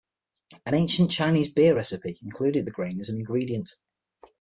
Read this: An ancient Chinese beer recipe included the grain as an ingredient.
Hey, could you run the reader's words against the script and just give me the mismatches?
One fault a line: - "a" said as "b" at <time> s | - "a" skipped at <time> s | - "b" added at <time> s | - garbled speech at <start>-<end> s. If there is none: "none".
none